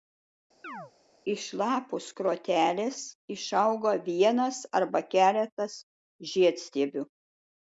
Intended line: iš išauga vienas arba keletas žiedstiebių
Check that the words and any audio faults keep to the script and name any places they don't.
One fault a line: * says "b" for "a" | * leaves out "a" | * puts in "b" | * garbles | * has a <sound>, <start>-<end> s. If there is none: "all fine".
* has a chirp, 0.6-0.9 s
* puts in "lapų skrotelės"